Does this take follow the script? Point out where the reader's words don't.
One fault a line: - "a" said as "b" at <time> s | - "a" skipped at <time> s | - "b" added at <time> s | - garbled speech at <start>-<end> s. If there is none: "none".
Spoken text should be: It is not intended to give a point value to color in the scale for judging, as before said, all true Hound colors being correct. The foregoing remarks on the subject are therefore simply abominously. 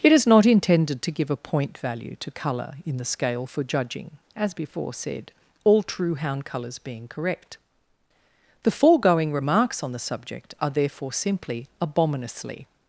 none